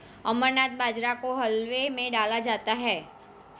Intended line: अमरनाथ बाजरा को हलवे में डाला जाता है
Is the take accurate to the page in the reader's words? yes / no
yes